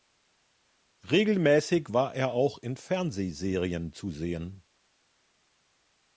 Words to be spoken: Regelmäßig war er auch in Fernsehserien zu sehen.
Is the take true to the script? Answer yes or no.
yes